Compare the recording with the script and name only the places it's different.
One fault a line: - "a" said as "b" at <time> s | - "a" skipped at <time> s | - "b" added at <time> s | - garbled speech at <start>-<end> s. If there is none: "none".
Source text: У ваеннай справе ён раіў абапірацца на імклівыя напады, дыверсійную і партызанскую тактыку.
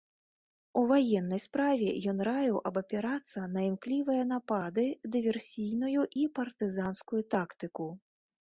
none